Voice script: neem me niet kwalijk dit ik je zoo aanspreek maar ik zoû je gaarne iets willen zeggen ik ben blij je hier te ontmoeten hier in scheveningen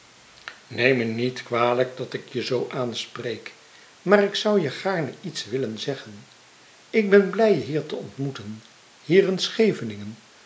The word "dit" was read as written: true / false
false